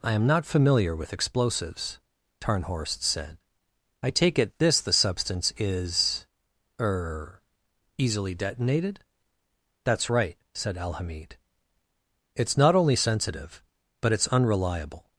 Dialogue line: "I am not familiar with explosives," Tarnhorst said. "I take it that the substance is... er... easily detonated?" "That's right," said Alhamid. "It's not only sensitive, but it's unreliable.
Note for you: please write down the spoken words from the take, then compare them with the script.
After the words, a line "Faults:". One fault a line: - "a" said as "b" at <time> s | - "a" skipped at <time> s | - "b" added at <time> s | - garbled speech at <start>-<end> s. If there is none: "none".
"I am not familiar with explosives," Tarnhorst said. "I take it this the substance is... er... easily detonated?" "That's right," said Alhamid. "It's not only sensitive, but it's unreliable.
Faults:
- "that" said as "this" at 4.6 s